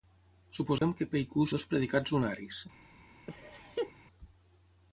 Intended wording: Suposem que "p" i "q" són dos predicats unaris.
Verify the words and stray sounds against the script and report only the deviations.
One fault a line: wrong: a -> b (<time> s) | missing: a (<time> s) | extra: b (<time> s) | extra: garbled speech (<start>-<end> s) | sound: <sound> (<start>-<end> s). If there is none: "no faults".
sound: dropout (0.8-0.8 s)
missing: són (1.4 s)
sound: laugh (3.3-3.9 s)